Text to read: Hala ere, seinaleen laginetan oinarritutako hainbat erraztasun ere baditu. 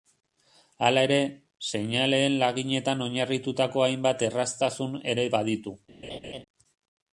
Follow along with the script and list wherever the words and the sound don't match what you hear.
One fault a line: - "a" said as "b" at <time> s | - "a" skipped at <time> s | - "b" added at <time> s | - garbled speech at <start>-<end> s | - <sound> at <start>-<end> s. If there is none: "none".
- laugh at 6.0-6.4 s